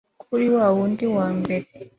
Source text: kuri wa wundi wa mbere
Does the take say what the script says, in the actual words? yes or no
yes